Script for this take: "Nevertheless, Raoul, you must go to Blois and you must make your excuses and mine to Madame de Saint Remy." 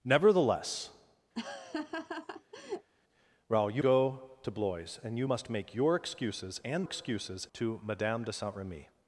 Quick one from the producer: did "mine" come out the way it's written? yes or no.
no